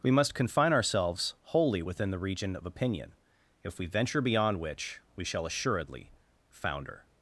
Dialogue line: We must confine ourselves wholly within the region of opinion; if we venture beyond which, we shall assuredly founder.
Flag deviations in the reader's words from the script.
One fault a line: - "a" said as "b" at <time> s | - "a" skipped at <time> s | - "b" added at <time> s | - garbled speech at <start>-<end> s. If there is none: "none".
none